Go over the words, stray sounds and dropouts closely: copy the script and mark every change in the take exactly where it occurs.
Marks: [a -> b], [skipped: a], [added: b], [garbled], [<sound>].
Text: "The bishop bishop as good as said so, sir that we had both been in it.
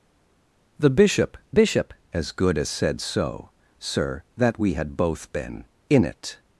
"The bishop bishop as good as said so, sir that we had both been in it.